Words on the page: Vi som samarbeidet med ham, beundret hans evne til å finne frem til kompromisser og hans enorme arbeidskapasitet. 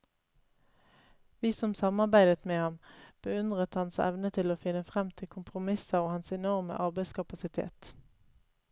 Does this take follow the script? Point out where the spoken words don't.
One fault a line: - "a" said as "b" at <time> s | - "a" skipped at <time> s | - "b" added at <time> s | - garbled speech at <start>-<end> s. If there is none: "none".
none